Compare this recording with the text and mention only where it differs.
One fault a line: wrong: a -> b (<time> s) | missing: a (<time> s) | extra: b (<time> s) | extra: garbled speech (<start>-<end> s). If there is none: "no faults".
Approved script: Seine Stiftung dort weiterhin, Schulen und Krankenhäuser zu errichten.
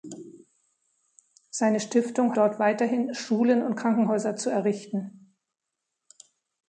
no faults